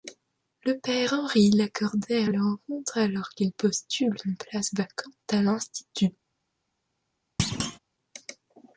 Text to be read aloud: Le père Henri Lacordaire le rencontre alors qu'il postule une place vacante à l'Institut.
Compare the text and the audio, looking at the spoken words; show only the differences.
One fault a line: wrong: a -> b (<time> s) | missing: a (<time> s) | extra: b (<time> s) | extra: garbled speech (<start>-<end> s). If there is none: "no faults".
no faults